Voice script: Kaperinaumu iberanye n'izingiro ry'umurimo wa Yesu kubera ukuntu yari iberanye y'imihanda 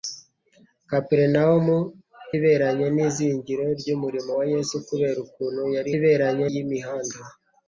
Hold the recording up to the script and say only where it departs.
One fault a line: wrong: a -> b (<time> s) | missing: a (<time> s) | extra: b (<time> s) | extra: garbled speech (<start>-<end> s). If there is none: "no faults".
no faults